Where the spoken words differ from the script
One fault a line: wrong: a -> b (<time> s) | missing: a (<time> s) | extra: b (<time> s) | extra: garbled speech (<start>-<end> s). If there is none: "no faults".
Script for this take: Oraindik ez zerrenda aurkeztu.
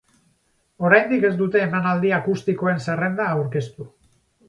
extra: dute emanaldi akustikoen (1.4 s)